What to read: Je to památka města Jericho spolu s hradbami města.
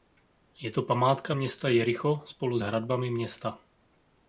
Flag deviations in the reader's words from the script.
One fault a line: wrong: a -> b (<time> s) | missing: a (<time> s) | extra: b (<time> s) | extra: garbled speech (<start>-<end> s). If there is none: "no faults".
no faults